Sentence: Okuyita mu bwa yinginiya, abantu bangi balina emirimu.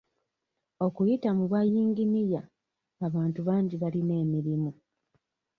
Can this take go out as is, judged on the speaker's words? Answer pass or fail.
pass